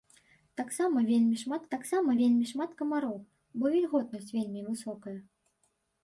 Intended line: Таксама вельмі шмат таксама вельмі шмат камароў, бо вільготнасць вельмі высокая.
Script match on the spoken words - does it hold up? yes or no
yes